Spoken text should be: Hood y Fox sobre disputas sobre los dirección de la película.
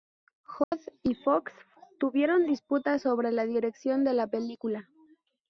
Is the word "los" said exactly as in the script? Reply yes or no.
no